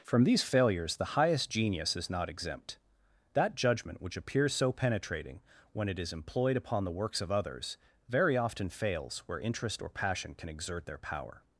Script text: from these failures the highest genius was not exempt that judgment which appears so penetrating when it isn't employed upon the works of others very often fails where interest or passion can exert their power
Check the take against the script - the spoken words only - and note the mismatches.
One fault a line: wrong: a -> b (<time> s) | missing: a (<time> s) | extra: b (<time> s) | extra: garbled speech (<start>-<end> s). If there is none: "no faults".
wrong: was -> is (2.0 s)
wrong: isn't -> is (6.0 s)